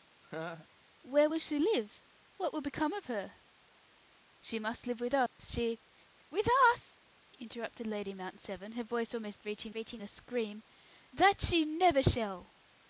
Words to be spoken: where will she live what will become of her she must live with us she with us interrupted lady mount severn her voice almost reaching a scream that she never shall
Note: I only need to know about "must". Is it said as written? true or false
true